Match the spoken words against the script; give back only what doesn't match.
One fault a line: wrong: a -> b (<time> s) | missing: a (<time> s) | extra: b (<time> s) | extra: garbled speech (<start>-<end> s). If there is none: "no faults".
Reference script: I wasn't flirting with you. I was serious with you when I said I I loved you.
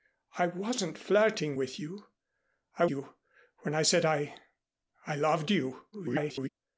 missing: was serious with (2.9 s)
extra: garbled speech (5.9-6.5 s)